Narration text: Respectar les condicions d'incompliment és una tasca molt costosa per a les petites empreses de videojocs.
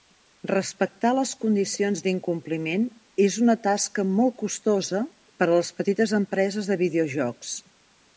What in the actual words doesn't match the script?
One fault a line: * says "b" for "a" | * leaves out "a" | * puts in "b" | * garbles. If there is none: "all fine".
all fine